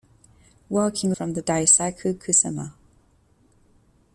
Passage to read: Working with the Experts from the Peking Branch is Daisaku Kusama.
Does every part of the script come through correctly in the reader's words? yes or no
no